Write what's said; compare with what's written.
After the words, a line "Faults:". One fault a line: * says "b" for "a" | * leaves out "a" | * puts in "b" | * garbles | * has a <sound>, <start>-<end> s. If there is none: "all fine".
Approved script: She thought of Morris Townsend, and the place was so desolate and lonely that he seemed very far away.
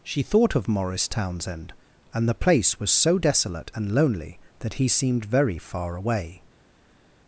She thought of Morris Townsend, and the place was so desolate and lonely that he seemed very far away.
Faults:
all fine